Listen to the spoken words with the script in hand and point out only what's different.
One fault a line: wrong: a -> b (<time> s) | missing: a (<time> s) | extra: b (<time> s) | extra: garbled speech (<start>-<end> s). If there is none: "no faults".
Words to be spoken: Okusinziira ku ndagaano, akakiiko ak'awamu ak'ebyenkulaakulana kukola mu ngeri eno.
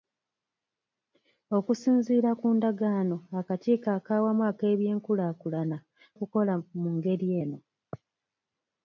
no faults